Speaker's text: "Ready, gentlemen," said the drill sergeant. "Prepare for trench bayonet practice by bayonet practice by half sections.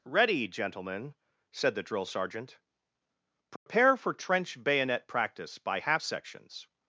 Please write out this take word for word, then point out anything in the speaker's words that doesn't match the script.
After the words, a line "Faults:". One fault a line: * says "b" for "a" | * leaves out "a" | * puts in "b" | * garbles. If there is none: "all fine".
"Ready, gentlemen," said the drill sergeant. "Prepare for trench bayonet practice by half sections.
Faults:
* leaves out "bayonet practice by"